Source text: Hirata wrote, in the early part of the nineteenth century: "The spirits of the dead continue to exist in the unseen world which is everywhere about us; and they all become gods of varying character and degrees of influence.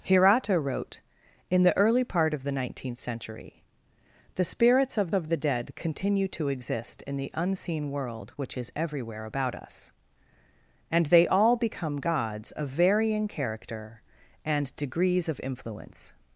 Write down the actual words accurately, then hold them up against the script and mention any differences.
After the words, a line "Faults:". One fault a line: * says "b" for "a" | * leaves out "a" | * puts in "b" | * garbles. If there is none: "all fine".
Hirata wrote, in the early part of the nineteenth century: "The spirits of of the dead continue to exist in the unseen world which is everywhere about us; and they all become gods of varying character and degrees of influence.
Faults:
* puts in "of"